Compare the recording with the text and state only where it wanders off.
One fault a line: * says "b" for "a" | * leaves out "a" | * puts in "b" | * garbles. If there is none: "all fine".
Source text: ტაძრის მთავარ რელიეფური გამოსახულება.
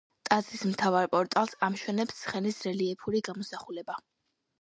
* puts in "პორტალს ამშვენებს ცხენის"